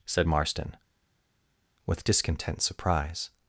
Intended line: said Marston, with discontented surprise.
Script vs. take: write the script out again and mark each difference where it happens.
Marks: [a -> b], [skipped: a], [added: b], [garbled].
said Marston, with [discontented -> discontent] surprise.